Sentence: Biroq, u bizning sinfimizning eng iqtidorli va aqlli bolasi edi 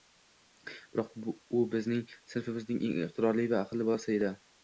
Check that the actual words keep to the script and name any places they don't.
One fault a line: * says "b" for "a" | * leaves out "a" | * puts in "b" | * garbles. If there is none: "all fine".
all fine